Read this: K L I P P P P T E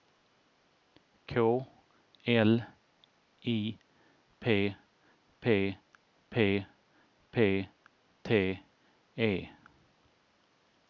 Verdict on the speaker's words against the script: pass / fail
pass